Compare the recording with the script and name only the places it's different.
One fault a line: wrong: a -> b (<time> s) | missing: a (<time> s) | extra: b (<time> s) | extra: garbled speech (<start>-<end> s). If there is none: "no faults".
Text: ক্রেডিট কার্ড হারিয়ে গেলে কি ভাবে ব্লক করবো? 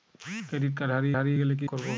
extra: হারিয়ে (1.2 s)
missing: ভাবে ব্লক (1.7 s)